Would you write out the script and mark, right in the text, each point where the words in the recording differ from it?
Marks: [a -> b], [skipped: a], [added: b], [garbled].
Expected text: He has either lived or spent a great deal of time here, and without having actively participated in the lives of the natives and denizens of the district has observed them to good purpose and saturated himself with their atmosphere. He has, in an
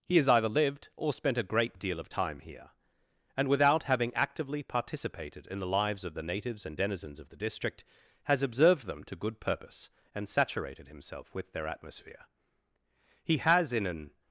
He has either lived or spent a great deal of time here, and without having actively participated in the lives of the natives and denizens of the district has observed them to good purpose and saturated himself with their atmosphere. He has, in an